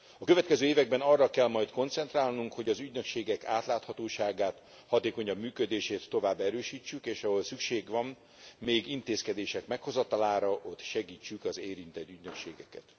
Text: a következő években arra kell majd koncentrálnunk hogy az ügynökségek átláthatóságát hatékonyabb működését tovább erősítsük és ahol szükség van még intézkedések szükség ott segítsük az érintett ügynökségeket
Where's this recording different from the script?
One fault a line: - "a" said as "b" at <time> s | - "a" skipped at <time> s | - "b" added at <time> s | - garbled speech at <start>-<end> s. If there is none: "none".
- "szükség" said as "meghozatalára" at 9.7 s